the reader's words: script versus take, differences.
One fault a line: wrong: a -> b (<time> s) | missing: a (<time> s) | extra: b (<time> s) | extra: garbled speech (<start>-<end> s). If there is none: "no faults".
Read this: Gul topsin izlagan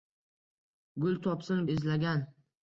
no faults